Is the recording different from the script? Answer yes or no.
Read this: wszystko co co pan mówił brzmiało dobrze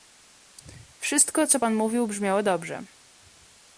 yes